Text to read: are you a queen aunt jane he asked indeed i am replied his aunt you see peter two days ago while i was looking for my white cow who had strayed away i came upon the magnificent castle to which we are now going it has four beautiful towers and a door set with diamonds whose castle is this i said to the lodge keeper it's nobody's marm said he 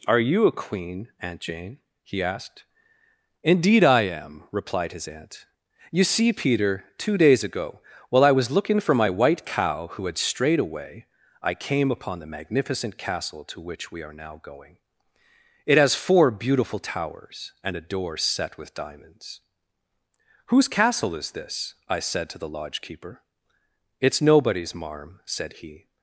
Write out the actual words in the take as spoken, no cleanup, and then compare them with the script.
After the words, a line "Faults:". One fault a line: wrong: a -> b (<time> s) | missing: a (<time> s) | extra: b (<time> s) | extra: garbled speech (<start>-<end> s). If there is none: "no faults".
are you a queen aunt jane he asked indeed i am replied his aunt you see peter two days ago while i was looking for my white cow who had strayed away i came upon the magnificent castle to which we are now going it has four beautiful towers and a door set with diamonds whose castle is this i said to the lodge keeper it's nobody's marm said he
Faults:
no faults